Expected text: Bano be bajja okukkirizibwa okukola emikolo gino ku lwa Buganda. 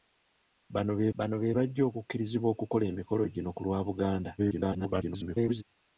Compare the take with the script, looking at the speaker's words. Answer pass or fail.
fail